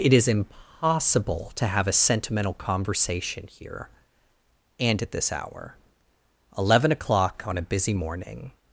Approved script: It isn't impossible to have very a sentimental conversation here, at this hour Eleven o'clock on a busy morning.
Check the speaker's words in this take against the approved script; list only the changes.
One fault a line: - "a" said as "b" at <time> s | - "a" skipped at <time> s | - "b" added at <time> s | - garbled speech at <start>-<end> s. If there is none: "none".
- "isn't" said as "is" at 0.1 s
- "very" skipped at 1.9 s
- "and" added at 4.8 s